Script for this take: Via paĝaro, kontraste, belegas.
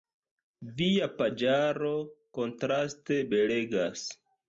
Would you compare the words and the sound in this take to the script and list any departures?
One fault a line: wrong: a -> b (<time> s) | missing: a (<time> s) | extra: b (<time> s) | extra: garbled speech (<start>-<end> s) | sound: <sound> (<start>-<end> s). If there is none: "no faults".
no faults